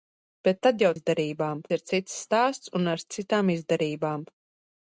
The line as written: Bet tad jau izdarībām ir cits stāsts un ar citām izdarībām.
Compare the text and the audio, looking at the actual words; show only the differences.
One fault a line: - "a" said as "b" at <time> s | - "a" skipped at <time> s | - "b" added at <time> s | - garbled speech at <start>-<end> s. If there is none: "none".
none